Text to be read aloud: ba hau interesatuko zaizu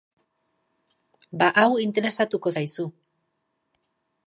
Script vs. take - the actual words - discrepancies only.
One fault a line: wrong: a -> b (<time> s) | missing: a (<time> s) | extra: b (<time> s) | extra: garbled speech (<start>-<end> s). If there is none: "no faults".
no faults